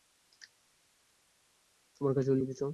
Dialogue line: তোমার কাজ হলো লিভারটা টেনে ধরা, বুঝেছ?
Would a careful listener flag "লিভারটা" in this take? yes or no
yes